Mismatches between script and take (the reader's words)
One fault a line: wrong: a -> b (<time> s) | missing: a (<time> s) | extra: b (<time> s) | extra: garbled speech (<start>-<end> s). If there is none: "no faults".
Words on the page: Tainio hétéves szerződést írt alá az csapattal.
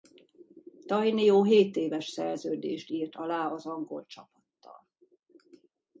extra: angol (3.7 s)